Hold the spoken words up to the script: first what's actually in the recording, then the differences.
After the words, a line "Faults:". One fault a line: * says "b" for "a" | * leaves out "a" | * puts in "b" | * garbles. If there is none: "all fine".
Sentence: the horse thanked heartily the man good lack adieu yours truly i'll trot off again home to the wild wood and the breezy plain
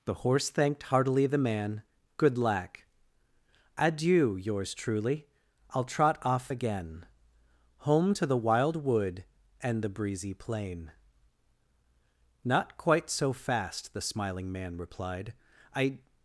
the horse thanked heartily the man good lack adieu yours truly i'll trot off again home to the wild wood and the breezy plain not quite so fast the smiling man replied i
Faults:
* puts in "not quite so fast the smiling man replied i"